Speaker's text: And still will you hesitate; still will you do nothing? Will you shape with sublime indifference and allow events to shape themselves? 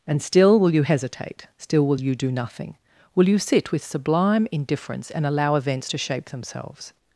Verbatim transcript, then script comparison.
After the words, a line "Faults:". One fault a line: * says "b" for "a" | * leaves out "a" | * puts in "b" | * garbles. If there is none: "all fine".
And still will you hesitate; still will you do nothing? Will you sit with sublime indifference and allow events to shape themselves?
Faults:
* says "sit" for "shape"